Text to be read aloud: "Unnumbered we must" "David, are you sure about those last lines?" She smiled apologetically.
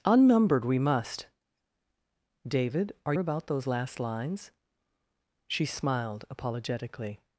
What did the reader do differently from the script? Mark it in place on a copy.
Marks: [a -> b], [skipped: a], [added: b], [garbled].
"Unnumbered we must" "David, are [skipped: you sure] about those last lines?" She smiled apologetically.